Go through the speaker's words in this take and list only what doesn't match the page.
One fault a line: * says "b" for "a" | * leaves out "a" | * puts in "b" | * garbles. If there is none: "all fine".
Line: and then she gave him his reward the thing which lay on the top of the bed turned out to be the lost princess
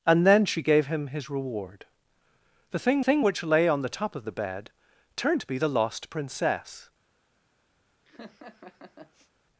* puts in "thing"
* leaves out "out"